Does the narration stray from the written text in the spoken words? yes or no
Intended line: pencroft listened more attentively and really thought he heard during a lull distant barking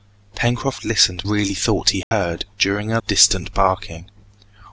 yes